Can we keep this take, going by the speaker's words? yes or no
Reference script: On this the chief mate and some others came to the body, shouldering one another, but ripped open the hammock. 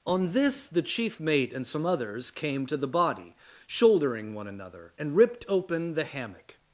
no